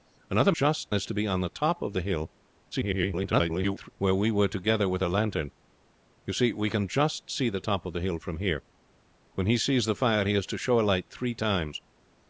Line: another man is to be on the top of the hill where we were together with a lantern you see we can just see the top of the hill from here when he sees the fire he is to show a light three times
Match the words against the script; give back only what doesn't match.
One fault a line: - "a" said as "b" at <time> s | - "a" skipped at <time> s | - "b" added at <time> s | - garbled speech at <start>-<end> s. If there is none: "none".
- "man" said as "just" at 0.5 s
- garbled speech at 2.7-3.9 s